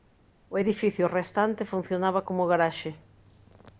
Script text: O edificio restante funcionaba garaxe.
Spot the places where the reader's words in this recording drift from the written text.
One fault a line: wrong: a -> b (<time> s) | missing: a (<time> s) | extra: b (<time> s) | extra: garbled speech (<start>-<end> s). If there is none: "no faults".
extra: como (2.3 s)